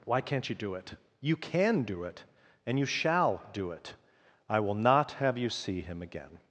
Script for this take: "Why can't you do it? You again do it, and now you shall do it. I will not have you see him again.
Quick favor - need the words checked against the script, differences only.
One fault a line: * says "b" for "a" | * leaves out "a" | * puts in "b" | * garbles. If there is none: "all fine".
* says "can" for "again"
* leaves out "now"